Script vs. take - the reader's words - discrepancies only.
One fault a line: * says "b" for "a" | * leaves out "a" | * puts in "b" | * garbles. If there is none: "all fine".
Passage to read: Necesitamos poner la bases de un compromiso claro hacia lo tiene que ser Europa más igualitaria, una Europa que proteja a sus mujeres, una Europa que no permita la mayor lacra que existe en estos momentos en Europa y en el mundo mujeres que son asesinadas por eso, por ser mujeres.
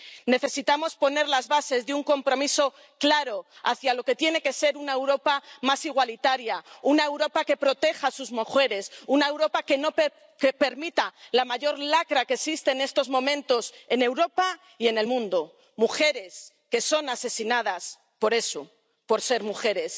* says "las" for "la"
* puts in "que"
* puts in "una"